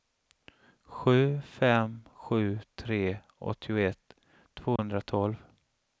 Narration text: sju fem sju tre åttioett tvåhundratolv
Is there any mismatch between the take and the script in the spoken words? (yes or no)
no